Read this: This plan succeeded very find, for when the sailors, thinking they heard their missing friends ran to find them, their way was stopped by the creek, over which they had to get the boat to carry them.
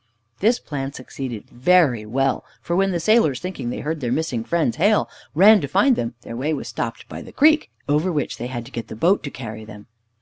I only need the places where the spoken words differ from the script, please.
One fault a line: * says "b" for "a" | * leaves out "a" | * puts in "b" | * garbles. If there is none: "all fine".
* says "well" for "find"
* puts in "hail"